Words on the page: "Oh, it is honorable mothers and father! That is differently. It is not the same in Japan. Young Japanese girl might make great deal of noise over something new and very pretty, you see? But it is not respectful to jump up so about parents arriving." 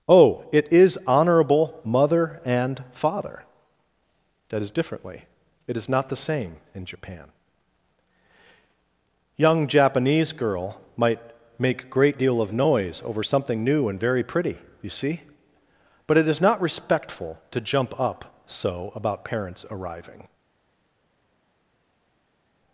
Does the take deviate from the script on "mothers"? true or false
true